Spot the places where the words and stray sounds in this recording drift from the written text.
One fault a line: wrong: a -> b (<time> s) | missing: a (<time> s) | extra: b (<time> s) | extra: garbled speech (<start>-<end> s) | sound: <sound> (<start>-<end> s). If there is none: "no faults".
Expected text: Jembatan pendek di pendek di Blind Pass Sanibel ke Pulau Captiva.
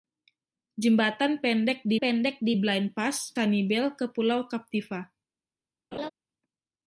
sound: laugh (5.9-6.1 s)